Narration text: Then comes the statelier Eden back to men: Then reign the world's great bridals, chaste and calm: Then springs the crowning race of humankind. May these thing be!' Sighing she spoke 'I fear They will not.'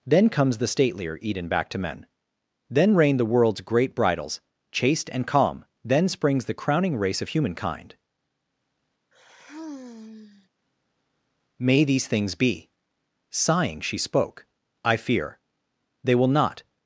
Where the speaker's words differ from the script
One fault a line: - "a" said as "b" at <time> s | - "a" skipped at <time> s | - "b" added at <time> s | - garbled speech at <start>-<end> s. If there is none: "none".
- "thing" said as "things" at 12.1 s